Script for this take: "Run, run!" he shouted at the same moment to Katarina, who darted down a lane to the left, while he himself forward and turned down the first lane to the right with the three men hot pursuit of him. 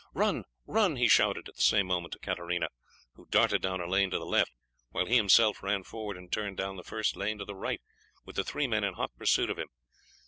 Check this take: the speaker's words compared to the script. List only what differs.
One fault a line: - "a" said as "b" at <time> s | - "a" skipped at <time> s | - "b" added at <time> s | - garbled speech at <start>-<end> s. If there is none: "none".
- "ran" added at 5.6 s
- "in" added at 8.8 s